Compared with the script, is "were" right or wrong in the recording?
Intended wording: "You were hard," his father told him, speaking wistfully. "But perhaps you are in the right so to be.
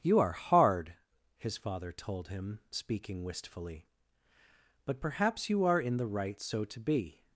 wrong